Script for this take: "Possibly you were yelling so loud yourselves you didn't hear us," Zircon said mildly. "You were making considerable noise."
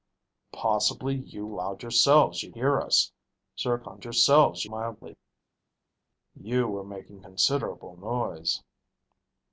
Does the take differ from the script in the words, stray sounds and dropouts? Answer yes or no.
yes